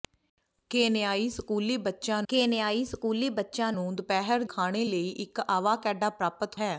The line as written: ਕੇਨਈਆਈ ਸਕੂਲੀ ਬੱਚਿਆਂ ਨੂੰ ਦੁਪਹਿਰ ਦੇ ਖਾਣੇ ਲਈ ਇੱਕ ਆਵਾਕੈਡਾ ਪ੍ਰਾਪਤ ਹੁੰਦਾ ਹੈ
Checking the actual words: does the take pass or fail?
fail